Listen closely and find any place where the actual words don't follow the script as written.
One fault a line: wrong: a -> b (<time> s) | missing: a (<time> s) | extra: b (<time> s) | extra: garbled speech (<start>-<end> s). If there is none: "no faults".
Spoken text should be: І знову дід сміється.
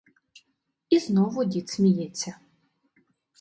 no faults